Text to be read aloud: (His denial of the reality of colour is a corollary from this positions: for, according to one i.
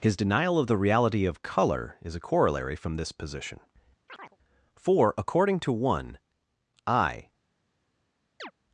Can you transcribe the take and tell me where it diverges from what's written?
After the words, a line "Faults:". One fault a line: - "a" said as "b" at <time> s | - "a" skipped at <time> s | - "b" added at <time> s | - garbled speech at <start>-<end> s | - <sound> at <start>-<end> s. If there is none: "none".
(His denial of the reality of colour is a corollary from this position: for, according to one i.
Faults:
- "positions" said as "position" at 3.1 s
- chirp at 4.1-4.4 s
- chirp at 8.4-8.5 s